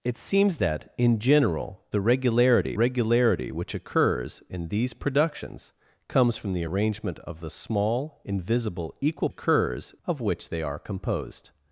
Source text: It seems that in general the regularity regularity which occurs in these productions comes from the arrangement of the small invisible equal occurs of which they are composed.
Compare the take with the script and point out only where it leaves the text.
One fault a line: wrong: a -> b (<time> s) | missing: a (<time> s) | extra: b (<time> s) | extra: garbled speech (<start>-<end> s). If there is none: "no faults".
no faults